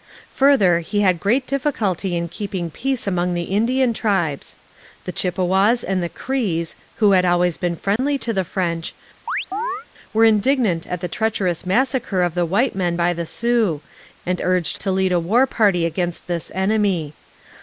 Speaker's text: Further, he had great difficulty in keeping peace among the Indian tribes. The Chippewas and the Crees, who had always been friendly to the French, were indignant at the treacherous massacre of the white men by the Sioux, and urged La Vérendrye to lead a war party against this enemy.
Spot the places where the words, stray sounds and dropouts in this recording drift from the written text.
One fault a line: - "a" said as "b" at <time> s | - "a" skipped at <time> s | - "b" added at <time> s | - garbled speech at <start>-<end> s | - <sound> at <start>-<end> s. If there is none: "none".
- dropout at 8.0-8.0 s
- chirp at 9.3-9.9 s
- "La Vérendrye" skipped at 14.8 s